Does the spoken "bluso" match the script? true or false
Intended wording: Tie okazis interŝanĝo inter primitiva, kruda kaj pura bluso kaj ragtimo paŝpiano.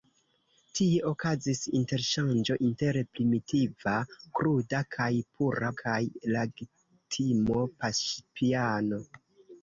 false